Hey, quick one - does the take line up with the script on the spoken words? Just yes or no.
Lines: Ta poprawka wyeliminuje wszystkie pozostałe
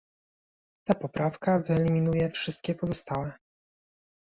yes